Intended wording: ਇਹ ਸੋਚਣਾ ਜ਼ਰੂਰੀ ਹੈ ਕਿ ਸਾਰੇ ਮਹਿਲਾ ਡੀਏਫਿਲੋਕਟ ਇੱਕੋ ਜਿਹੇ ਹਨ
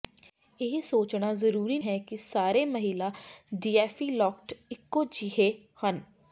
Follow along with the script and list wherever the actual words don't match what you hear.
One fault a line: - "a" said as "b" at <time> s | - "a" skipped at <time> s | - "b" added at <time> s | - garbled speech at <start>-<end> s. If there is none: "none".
none